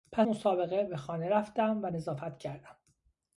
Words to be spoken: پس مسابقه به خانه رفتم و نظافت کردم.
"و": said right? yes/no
yes